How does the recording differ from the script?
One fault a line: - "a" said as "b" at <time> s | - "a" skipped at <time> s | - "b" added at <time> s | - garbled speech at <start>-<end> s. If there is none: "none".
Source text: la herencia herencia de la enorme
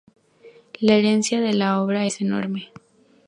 - "herencia" skipped at 1.4 s
- "obra es" added at 1.8 s